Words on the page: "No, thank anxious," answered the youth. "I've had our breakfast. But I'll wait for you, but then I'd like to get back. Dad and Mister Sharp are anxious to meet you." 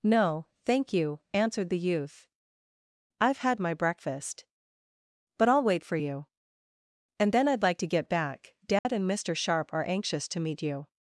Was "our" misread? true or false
true